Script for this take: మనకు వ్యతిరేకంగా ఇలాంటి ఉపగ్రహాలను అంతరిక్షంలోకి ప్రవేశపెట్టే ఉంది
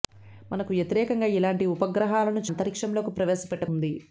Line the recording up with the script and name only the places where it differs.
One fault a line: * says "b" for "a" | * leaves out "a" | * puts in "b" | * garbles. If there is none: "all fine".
all fine